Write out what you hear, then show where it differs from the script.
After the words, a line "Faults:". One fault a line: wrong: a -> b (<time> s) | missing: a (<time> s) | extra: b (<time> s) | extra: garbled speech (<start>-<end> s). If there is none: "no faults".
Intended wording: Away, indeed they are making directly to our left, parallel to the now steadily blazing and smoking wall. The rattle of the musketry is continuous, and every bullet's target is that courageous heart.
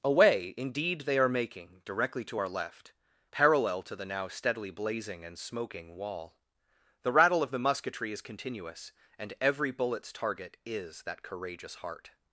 Away, indeed they are making directly to our left, parallel to the now steadily blazing and smoking wall. The rattle of the musketry is continuous, and every bullet's target is that courageous heart.
Faults:
no faults